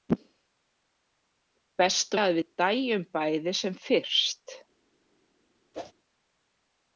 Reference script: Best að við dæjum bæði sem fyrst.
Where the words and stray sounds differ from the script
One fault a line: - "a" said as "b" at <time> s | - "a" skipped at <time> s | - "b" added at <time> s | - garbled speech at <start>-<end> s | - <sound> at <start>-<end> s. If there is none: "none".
- whoosh at 5.7-5.9 s